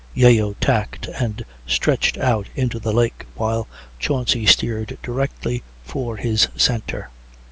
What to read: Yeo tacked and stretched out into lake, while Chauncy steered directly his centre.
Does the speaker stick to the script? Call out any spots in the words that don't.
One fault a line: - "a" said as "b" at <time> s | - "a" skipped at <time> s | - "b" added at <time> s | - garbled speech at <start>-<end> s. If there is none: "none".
- "the" added at 2.8 s
- "for" added at 5.8 s